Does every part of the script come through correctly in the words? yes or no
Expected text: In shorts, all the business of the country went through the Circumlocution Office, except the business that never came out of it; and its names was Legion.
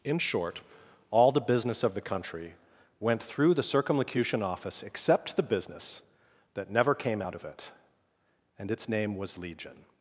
no